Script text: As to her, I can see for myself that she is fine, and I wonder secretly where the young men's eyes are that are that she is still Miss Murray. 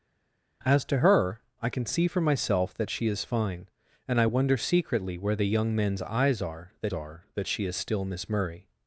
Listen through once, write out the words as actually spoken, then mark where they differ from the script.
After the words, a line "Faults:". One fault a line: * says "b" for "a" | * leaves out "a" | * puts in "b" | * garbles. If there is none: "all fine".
As to her, I can see for myself that she is fine, and I wonder secretly where the young men's eyes are that are that she is still Miss Murray.
Faults:
all fine